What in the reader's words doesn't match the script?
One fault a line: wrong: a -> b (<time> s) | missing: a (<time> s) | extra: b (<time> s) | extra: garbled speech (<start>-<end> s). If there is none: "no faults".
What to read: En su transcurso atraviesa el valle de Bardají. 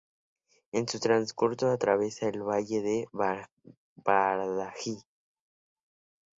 no faults